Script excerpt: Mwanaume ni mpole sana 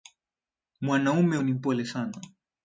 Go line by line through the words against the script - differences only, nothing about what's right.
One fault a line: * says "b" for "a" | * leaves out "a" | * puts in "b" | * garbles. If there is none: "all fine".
all fine